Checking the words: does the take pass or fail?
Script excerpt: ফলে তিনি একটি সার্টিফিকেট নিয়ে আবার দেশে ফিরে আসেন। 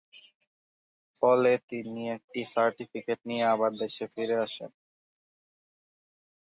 pass